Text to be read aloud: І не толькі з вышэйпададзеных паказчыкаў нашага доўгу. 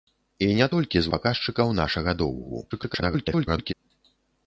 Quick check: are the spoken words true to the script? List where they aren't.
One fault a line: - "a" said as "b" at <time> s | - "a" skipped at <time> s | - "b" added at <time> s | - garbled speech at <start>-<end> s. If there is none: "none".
- "вышэйпададзеных" skipped at 1.1 s
- garbled speech at 2.7-3.7 s